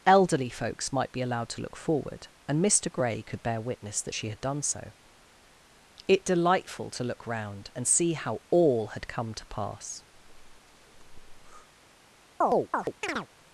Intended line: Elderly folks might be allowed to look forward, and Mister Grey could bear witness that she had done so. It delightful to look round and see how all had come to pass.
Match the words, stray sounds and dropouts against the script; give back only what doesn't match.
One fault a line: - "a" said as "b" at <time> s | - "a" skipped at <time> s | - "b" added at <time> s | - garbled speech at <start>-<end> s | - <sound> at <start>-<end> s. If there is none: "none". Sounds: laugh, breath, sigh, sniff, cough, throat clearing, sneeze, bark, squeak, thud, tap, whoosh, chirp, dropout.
- breath at 10.1-11.7 s
- chirp at 12.4-13.3 s